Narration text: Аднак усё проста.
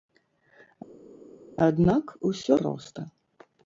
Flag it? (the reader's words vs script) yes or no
no